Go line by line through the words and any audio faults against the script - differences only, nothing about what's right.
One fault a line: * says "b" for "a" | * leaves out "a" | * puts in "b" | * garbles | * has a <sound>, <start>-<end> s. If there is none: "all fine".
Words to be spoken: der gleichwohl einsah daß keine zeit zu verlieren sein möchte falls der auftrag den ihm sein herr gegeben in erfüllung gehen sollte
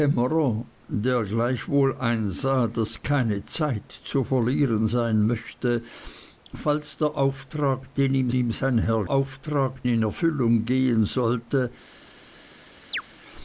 * puts in "ihm"
* says "auftrag" for "gegeben"
* has a chirp, 12.9-13.0 s